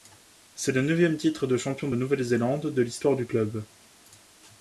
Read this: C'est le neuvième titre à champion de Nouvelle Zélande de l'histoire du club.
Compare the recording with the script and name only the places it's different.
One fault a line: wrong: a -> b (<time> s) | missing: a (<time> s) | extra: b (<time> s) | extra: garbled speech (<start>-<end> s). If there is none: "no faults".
wrong: à -> de (1.4 s)